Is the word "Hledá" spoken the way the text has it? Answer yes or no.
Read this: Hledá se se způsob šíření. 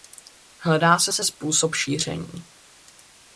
yes